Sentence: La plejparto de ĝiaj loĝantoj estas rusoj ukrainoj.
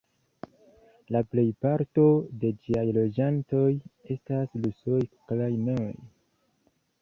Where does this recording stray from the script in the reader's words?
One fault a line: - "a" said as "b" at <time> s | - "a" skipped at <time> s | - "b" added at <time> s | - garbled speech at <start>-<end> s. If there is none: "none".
none